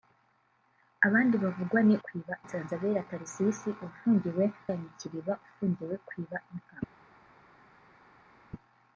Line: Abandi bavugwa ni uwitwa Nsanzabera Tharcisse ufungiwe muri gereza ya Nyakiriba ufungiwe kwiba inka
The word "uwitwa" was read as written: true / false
false